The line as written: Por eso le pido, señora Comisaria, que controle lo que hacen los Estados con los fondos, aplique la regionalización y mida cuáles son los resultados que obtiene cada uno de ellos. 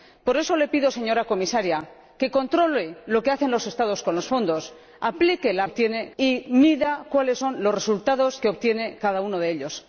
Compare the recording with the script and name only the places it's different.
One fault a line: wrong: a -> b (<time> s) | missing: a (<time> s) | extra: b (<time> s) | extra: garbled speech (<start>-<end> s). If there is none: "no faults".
wrong: regionalización -> obtiene (5.6 s)